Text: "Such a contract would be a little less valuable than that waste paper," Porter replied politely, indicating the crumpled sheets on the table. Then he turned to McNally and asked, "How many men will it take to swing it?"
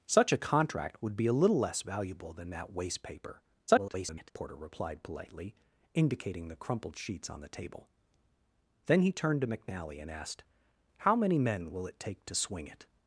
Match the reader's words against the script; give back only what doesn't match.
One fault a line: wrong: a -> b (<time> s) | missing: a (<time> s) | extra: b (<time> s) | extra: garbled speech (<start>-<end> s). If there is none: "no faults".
extra: garbled speech (3.7-4.3 s)